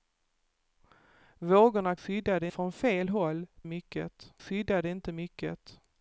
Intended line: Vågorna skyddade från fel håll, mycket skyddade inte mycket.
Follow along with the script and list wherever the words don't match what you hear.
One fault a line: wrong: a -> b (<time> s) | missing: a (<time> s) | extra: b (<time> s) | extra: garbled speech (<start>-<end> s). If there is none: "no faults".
no faults